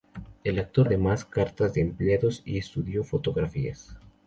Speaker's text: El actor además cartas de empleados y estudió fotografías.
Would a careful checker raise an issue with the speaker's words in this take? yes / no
no